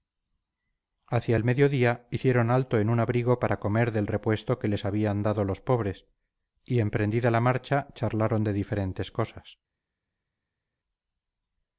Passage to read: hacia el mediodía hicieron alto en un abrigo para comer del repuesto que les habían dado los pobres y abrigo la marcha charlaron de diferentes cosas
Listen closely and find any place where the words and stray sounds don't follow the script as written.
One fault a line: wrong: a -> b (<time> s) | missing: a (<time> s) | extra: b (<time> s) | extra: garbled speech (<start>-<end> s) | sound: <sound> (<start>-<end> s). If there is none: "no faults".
wrong: abrigo -> emprendida (6.8 s)